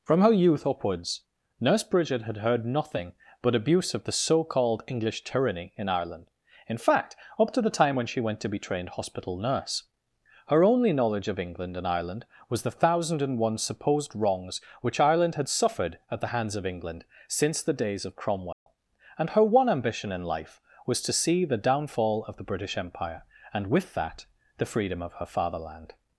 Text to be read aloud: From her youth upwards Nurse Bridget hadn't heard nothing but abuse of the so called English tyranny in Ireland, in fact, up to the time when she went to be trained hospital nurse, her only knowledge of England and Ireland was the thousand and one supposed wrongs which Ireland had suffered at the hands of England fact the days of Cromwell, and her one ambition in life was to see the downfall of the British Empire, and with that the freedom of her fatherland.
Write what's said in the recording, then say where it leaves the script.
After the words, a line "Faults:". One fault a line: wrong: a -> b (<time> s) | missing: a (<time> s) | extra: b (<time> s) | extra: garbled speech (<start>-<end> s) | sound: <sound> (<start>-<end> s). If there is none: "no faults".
From her youth upwards Nurse Bridget had heard nothing but abuse of the so called English tyranny in Ireland, in fact, up to the time when she went to be trained hospital nurse, her only knowledge of England and Ireland was the thousand and one supposed wrongs which Ireland had suffered at the hands of England since the days of Cromwell, and her one ambition in life was to see the downfall of the British Empire, and with that the freedom of her fatherland.
Faults:
wrong: hadn't -> had (2.2 s)
wrong: fact -> since (17.3 s)
sound: dropout (18.5-18.7 s)